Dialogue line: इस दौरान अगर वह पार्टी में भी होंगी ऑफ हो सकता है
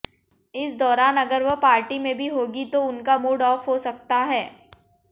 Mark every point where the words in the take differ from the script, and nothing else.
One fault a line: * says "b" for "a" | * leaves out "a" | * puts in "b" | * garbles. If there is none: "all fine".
* puts in "तो उनका मूड"